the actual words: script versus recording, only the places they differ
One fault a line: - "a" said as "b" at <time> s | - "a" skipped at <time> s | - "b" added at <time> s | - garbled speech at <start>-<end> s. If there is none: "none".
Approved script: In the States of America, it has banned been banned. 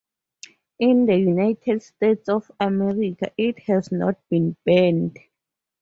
- "United" added at 1.1 s
- "banned" said as "not" at 3.9 s